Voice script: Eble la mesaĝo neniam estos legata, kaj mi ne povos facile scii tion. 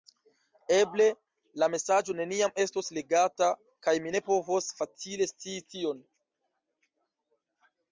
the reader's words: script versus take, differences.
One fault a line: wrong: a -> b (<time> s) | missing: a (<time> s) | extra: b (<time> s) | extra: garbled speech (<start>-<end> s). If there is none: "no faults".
no faults